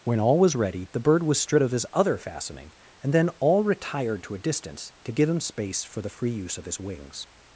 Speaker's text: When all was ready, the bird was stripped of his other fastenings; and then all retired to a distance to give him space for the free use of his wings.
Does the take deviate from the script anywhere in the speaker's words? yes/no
yes